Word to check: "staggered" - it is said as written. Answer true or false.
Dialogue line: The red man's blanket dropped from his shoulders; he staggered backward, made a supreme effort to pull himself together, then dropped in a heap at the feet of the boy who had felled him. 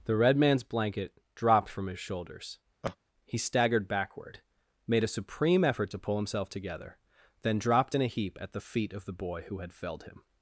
true